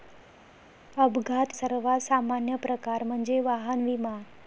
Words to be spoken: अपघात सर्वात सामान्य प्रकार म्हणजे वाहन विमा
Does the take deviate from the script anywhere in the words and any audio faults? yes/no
no